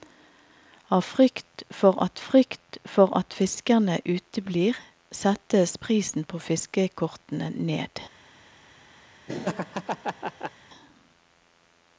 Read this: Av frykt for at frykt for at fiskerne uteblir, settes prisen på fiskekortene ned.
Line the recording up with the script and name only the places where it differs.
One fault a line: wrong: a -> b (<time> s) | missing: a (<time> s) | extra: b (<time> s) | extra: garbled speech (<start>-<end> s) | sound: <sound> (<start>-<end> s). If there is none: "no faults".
sound: laugh (9.3-10.5 s)